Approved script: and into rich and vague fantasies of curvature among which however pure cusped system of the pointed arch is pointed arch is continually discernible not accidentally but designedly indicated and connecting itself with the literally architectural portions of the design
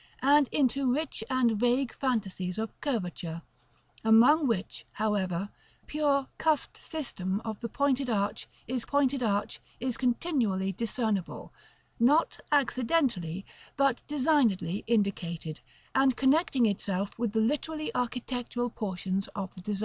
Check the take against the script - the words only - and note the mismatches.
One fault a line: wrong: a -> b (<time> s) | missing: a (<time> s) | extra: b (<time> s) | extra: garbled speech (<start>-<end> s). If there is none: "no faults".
no faults